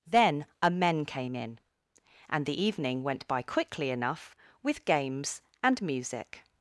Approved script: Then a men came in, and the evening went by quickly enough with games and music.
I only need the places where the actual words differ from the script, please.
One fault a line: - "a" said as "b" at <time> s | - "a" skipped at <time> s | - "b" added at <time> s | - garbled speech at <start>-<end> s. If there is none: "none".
none